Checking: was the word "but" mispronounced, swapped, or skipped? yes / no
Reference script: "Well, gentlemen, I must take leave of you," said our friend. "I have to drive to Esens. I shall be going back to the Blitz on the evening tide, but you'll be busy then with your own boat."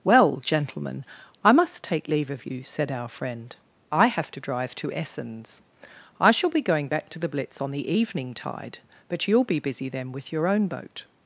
no